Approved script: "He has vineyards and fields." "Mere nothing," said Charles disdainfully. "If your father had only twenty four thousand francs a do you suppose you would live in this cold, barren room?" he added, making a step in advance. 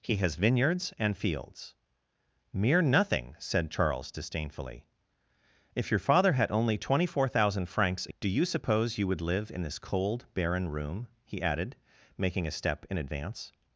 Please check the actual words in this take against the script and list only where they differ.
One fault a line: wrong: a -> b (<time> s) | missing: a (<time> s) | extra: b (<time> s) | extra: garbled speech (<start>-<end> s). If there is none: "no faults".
no faults